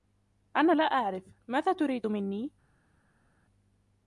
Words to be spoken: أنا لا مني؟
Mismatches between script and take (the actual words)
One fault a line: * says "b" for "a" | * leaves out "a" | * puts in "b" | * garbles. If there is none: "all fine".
* puts in "أعرف ماذا تريد"